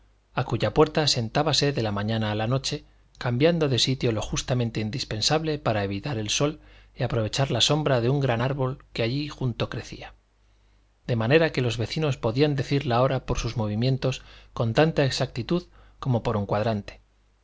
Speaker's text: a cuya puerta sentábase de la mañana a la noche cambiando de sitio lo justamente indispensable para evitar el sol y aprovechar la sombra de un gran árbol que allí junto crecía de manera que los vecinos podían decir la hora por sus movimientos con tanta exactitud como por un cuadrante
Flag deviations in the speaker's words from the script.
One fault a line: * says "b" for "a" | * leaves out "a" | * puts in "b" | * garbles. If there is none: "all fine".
all fine